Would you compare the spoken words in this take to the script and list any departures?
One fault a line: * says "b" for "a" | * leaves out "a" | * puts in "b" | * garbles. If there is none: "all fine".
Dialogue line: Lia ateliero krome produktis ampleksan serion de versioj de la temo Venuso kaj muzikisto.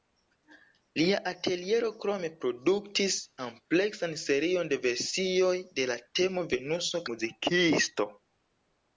* leaves out "kaj"